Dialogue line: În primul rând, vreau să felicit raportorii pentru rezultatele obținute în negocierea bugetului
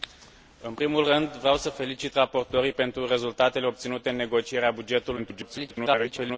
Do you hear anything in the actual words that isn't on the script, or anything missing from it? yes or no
yes